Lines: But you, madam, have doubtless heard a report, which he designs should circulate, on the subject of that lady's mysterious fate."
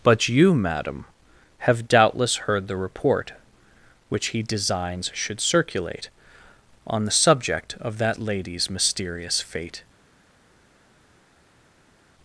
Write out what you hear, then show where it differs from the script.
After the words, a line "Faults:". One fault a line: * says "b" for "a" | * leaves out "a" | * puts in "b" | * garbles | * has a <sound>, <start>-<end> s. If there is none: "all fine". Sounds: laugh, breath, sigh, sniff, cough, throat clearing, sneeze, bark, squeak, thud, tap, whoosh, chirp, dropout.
But you, madam, have doubtless heard the report, which he designs should circulate, on the subject of that lady's mysterious fate."
Faults:
* says "the" for "a"